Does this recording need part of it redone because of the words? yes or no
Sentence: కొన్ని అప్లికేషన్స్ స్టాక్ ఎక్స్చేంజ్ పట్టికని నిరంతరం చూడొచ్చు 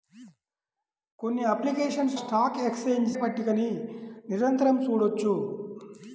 no